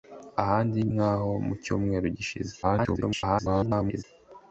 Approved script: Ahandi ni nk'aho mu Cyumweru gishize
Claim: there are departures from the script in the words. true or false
true